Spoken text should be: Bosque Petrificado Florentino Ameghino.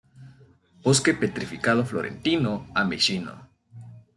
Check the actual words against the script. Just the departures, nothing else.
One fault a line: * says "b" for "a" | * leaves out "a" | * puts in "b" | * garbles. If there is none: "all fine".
all fine